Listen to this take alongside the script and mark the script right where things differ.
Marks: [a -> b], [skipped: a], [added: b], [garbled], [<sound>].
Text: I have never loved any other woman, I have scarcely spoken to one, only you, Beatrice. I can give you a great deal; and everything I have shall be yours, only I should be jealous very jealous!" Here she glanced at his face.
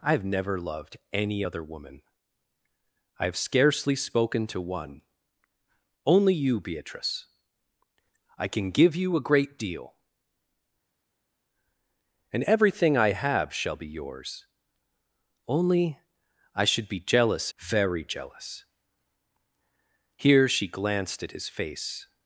I have never loved any other woman, I have scarcely spoken to one, only you, Beatrice. I can give you a great deal; and everything I have shall be yours, only I should be jealous very jealous!" Here she glanced at his face.